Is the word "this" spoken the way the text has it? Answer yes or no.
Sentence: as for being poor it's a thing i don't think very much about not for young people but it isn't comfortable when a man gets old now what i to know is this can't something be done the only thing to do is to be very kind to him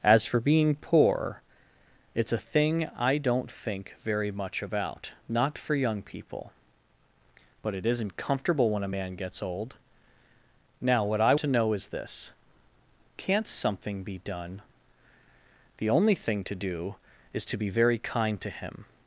yes